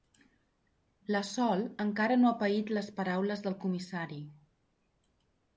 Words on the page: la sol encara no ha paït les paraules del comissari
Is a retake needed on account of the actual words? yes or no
no